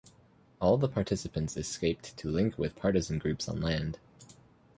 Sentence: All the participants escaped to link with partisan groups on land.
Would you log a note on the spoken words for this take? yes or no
no